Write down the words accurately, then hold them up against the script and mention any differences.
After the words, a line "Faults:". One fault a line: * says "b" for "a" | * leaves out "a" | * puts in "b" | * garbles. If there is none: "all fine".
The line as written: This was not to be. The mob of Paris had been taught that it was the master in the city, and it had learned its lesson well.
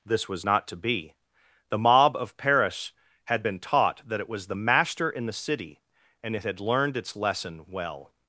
This was not to be. The mob of Paris had been taught that it was the master in the city, and it had learned its lesson well.
Faults:
all fine